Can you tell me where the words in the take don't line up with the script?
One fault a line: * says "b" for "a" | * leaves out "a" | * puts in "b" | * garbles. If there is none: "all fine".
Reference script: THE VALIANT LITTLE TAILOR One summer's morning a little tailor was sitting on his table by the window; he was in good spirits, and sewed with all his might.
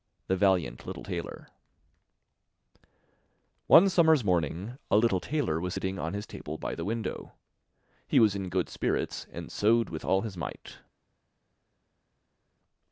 all fine